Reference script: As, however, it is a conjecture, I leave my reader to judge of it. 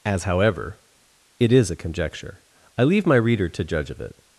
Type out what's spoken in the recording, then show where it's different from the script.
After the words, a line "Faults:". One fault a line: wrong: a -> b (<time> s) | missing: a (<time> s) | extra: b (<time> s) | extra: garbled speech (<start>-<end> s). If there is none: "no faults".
As, however, it is a conjecture, I leave my reader to judge of it.
Faults:
no faults